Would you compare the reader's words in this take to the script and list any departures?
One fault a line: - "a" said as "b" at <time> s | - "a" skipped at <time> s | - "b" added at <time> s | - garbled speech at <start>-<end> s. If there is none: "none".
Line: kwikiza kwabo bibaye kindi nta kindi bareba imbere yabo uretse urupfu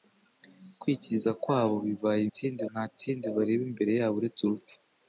none